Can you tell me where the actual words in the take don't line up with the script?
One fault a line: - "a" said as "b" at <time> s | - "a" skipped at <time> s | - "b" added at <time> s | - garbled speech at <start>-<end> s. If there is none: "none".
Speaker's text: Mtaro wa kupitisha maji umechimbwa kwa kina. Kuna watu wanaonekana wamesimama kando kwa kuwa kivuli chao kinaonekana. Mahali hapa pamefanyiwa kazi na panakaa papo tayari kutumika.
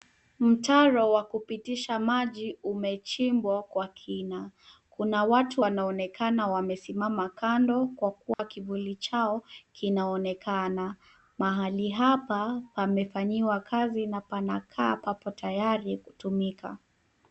none